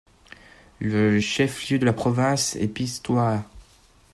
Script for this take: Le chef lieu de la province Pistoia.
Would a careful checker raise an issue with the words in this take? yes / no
yes